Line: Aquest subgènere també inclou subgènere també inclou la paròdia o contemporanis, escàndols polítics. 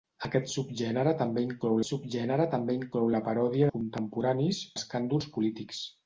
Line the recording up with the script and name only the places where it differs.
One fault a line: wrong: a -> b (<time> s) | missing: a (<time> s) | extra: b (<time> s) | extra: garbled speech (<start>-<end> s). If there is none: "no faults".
no faults